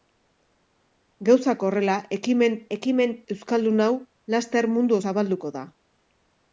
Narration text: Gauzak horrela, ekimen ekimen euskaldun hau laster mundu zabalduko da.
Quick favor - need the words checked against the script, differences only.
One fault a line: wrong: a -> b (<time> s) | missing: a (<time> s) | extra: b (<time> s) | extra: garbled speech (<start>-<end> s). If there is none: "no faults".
no faults